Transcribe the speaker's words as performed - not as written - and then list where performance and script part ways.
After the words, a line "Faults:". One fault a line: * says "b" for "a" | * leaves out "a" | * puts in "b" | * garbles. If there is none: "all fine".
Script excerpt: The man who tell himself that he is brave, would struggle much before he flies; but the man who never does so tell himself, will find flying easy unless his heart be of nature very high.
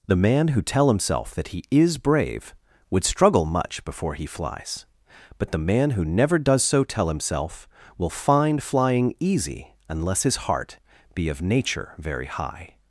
The man who tell himself that he is brave, would struggle much before he flies; but the man who never does so tell himself, will find flying easy unless his heart be of nature very high.
Faults:
all fine